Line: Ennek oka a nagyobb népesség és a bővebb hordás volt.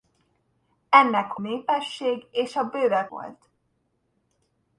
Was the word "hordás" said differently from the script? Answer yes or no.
yes